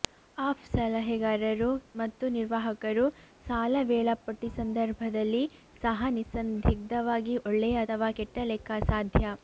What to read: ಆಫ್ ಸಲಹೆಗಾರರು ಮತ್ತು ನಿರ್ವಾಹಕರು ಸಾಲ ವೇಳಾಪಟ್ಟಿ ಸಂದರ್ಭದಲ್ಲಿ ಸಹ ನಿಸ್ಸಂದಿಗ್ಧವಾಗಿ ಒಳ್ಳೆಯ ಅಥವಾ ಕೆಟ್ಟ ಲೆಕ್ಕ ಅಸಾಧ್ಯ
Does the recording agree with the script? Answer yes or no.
yes